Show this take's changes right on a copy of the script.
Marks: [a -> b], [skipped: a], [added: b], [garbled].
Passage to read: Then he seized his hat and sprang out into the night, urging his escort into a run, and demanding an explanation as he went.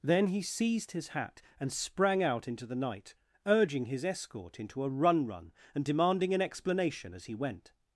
Then he seized his hat and sprang out into the night, urging his escort into a run, [added: run] and demanding an explanation as he went.